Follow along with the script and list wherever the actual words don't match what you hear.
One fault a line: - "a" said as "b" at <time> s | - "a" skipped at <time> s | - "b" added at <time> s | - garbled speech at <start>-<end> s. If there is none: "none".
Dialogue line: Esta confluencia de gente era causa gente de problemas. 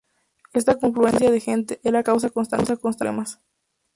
- "gente" said as "constante" at 2.3 s